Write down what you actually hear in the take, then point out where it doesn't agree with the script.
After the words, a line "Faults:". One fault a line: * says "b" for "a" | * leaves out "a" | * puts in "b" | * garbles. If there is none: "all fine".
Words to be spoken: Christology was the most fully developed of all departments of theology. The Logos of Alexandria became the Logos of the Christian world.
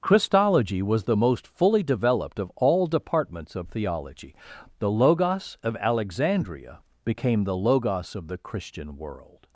Christology was the most fully developed of all departments of theology. The Logos of Alexandria became the Logos of the Christian world.
Faults:
all fine